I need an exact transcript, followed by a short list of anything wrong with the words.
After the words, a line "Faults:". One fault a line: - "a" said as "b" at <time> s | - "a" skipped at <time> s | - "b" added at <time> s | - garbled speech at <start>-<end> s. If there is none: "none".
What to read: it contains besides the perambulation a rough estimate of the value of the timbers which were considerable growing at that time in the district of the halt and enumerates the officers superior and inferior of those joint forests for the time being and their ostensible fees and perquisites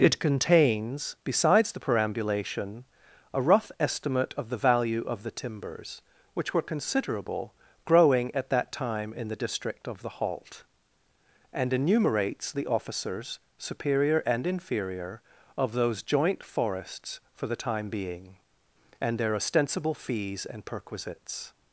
it contains besides the perambulation a rough estimate of the value of the timbers which were considerable growing at that time in the district of the halt and enumerates the officers superior and inferior of those joint forests for the time being and their ostensible fees and perquisites
Faults:
none